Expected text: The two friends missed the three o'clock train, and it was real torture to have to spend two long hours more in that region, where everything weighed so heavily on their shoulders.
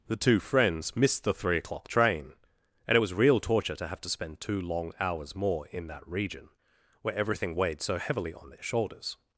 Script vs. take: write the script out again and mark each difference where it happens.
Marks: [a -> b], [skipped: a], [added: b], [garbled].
The two friends missed the three o'clock train, and it was real torture to have to spend two long hours more in that region, where everything weighed so heavily on their shoulders.